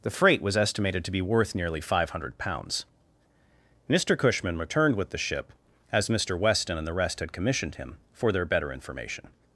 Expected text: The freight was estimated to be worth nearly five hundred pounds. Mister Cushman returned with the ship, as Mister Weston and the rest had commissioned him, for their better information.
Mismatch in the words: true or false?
false